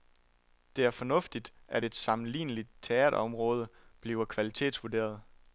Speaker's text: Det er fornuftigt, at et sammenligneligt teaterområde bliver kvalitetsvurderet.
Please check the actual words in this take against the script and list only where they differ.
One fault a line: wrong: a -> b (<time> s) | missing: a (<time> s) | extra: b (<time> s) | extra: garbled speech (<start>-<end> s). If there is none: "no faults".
no faults